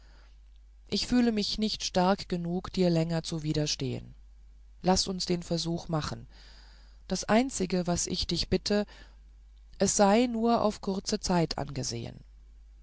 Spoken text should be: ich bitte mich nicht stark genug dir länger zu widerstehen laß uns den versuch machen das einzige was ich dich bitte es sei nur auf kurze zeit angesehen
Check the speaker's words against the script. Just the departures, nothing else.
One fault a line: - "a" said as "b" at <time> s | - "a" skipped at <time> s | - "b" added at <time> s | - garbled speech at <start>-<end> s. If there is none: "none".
- "bitte" said as "fühle" at 1.1 s